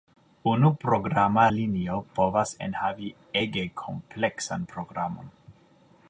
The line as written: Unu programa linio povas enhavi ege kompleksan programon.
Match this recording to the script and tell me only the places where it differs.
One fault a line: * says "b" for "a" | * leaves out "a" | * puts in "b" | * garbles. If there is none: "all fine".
all fine